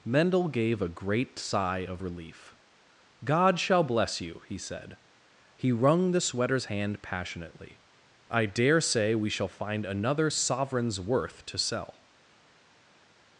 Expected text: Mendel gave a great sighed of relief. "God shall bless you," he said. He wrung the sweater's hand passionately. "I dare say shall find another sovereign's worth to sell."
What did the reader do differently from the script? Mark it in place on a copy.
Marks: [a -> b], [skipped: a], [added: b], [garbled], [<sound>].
Mendel gave a great [sighed -> sigh] of relief. "God shall bless you," he said. He wrung the sweater's hand passionately. "I dare say [added: we] shall find another sovereign's worth to sell."